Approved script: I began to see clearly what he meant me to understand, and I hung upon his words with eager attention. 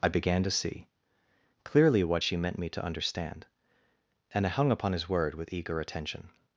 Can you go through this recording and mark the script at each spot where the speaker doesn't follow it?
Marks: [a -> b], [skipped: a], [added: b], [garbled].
I began to see clearly what [he -> she] meant me to understand, and I hung upon his [words -> word] with eager attention.